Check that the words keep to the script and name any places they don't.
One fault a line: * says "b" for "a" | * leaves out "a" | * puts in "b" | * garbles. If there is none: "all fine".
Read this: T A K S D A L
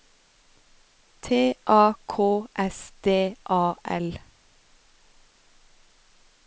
all fine